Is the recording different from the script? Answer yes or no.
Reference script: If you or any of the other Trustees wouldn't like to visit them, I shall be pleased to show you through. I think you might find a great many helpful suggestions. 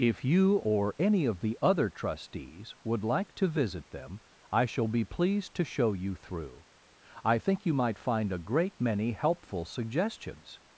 yes